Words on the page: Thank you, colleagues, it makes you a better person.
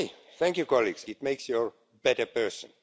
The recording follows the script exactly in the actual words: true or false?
true